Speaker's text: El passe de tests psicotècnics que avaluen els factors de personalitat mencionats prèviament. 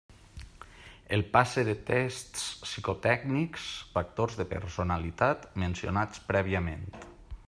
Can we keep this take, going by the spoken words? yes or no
no